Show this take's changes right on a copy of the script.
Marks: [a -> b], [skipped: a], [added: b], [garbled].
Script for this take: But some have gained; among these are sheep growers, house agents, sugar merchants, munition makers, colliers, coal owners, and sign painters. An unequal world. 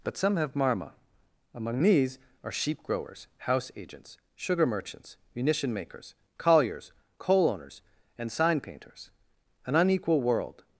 But some have [gained; -> marma] among these are sheep growers, house agents, sugar merchants, munition makers, colliers, coal owners, and sign painters. An unequal world.